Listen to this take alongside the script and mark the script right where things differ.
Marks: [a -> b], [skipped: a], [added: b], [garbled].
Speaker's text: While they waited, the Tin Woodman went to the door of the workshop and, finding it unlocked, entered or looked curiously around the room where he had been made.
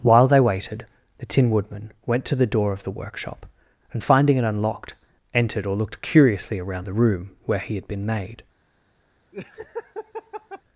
While they waited, the Tin Woodman went to the door of the workshop and, finding it unlocked, entered or looked curiously around the room where he had been made.